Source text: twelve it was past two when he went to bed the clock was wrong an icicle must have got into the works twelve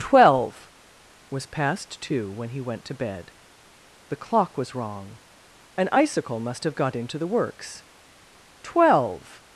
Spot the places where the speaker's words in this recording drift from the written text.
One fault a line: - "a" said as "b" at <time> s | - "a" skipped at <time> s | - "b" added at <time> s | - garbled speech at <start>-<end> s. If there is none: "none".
- "it" skipped at 0.7 s